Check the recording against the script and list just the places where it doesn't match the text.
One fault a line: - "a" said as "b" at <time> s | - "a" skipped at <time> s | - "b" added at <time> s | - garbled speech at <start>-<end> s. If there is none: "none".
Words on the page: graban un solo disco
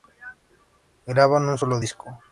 none